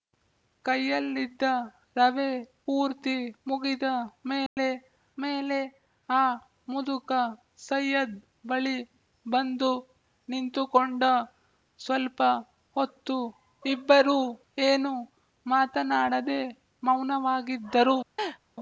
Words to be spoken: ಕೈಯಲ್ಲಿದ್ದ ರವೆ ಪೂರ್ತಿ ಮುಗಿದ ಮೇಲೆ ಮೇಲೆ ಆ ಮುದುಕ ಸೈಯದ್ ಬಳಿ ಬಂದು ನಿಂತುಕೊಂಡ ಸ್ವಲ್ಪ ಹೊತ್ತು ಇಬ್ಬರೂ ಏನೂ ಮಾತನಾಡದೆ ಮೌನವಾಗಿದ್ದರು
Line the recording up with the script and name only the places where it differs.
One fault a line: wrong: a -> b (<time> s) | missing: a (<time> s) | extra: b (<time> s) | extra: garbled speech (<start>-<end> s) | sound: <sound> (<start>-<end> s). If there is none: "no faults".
sound: dropout (4.5-4.6 s)
sound: laugh (18.2-18.4 s)